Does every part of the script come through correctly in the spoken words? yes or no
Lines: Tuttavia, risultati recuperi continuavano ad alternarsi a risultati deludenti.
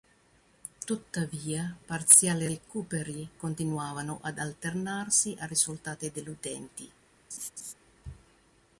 no